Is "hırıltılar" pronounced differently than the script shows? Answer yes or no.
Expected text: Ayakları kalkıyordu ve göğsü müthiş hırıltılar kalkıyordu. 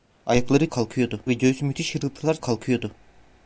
no